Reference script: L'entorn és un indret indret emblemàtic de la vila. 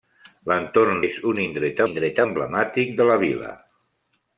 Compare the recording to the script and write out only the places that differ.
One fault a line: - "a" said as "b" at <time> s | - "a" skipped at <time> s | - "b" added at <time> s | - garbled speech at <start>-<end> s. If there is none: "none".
none